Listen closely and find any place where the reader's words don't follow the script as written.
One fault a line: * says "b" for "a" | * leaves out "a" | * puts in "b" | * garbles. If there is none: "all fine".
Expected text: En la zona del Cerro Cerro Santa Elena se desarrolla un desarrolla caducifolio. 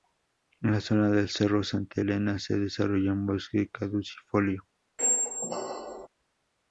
* leaves out "Cerro"
* says "bosque" for "desarrolla"